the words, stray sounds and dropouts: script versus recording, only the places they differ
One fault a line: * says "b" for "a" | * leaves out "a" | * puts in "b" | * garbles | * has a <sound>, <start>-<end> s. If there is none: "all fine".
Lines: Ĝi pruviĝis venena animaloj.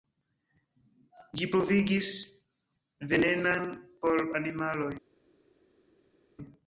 * puts in "por"